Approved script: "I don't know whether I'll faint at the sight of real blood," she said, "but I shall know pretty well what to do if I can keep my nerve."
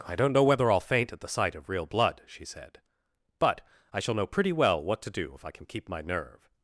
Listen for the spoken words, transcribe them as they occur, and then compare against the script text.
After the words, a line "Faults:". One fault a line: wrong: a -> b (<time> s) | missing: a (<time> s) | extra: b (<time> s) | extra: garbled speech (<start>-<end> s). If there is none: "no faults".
"I don't know whether I'll faint at the sight of real blood," she said, "but I shall know pretty well what to do if I can keep my nerve."
Faults:
no faults